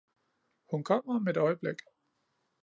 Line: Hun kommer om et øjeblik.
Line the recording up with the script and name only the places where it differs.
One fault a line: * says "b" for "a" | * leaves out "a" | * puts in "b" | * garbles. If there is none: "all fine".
all fine